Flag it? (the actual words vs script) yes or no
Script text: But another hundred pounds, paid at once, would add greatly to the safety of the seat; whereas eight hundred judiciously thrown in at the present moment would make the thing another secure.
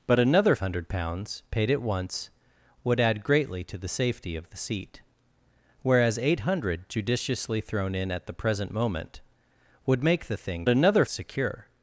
no